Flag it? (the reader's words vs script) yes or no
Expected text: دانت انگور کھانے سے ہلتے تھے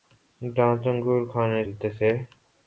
yes